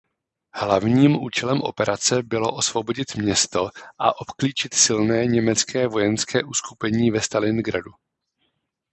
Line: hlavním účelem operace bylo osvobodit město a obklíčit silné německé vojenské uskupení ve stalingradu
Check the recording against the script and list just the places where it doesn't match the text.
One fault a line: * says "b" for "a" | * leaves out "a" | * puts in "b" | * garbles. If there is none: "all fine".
all fine